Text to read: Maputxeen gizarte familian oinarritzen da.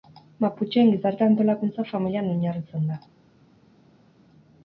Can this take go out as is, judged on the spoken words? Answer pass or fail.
fail